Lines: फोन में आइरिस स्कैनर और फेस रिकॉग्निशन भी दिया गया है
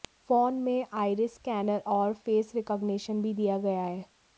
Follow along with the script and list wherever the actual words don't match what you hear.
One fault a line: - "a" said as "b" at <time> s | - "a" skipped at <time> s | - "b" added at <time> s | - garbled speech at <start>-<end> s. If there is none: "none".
none